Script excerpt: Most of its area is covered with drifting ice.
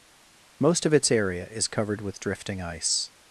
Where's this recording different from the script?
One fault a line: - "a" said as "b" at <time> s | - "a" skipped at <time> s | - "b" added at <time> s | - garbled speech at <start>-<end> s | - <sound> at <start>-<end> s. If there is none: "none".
none